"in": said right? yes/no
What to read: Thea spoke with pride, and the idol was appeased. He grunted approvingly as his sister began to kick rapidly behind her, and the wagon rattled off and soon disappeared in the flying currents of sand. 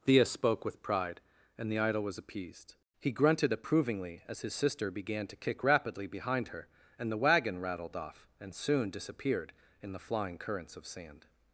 yes